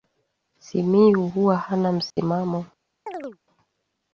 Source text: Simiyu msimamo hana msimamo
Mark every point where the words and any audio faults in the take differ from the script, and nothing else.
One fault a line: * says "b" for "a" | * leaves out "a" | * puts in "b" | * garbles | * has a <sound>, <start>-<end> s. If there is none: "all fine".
* says "huwa" for "msimamo"
* has a dropout, 2.1-2.2 s
* has a chirp, 3.1-3.4 s